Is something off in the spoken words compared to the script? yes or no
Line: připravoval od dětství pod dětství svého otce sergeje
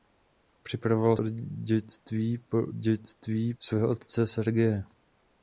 no